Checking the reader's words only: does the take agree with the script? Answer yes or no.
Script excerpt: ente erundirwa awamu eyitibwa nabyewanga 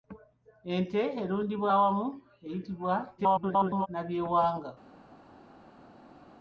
no